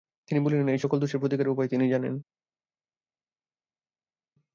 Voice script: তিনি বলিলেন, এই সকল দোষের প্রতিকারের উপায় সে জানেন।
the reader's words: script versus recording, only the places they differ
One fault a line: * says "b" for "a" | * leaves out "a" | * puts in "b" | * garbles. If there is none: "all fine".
* says "তিনি" for "সে"